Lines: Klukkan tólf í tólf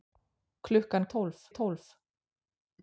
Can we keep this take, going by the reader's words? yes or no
yes